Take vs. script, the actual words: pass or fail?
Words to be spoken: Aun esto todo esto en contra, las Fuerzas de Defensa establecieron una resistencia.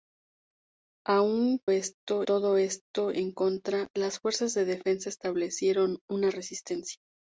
pass